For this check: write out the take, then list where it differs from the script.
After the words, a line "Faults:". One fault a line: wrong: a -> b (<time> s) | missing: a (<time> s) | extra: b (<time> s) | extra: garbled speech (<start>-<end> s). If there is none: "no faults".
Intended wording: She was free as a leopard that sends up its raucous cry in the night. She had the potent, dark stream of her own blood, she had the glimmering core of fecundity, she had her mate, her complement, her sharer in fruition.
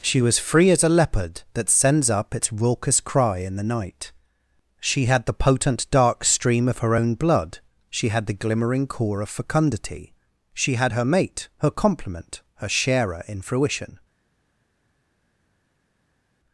She was free as a leopard that sends up its raucous cry in the night. She had the potent, dark stream of her own blood, she had the glimmering core of fecundity, she had her mate, her complement, her sharer in fruition.
Faults:
no faults